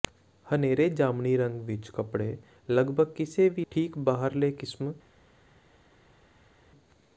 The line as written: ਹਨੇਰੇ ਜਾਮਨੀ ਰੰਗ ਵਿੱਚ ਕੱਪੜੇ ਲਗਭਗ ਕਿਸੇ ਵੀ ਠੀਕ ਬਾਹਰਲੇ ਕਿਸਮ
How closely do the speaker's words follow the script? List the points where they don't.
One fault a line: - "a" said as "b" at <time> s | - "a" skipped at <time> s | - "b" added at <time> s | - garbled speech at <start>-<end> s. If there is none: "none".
none